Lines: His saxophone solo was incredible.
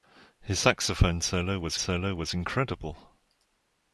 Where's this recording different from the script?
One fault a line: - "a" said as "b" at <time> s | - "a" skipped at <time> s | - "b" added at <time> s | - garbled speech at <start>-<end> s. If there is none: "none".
- "solo was" added at 1.8 s